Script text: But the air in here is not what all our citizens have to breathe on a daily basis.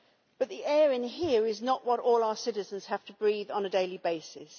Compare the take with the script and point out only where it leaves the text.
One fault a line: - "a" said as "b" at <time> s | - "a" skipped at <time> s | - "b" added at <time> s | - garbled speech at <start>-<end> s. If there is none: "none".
none